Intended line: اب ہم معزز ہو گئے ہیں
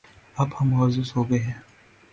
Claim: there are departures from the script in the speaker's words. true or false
false